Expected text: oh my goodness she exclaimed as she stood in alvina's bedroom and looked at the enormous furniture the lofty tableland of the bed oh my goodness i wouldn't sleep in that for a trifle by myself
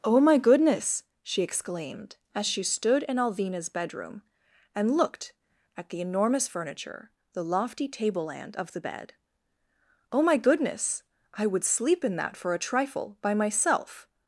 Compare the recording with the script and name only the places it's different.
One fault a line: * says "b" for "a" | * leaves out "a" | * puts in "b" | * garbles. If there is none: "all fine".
* says "would" for "wouldn't"